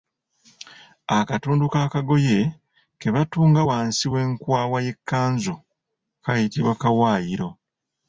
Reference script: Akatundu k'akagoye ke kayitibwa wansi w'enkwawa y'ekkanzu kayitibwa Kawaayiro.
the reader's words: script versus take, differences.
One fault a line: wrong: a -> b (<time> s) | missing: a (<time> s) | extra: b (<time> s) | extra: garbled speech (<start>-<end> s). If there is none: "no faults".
wrong: kayitibwa -> batunga (3.1 s)